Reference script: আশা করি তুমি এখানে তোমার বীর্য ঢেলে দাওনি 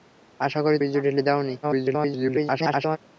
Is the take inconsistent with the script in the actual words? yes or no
yes